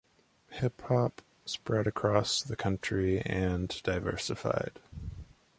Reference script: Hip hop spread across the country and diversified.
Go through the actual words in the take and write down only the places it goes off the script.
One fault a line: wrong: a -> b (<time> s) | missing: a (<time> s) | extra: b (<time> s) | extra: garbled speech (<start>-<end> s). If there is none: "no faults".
no faults